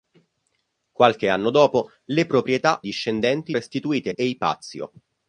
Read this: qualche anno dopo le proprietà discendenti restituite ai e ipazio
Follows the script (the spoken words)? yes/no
yes